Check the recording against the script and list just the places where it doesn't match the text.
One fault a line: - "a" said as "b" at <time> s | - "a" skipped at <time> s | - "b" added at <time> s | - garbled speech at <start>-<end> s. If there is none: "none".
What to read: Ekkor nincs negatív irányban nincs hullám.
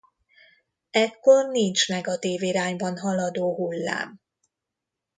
- "nincs" said as "haladó" at 3.0 s